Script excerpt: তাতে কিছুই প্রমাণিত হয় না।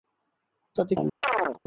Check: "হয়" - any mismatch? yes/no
yes